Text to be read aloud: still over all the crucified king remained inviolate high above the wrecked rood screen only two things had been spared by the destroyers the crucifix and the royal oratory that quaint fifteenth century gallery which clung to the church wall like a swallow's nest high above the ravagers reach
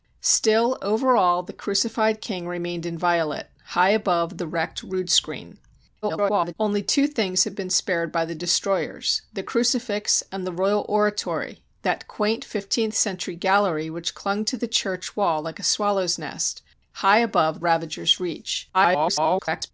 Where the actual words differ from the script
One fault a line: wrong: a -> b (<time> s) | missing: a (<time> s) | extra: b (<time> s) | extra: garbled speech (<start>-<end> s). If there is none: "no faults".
extra: garbled speech (6.0-6.5 s)
missing: the (17.6 s)
extra: garbled speech (18.7-19.7 s)